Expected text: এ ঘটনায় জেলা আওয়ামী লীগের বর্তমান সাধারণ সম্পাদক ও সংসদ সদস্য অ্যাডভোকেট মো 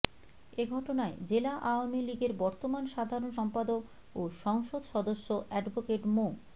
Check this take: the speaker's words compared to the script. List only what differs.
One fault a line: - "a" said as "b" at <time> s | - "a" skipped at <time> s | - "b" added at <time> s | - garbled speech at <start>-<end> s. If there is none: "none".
none